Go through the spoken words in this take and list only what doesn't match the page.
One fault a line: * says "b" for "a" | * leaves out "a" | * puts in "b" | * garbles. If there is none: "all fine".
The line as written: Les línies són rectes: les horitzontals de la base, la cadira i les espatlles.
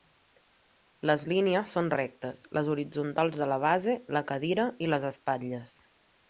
all fine